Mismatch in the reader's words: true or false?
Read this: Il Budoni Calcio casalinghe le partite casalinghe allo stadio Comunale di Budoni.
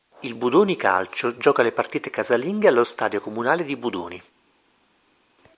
true